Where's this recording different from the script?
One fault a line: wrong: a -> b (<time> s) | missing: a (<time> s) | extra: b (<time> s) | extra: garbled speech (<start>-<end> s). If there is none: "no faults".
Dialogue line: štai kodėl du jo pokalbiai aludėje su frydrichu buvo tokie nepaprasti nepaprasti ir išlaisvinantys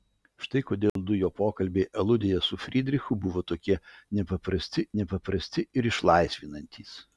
no faults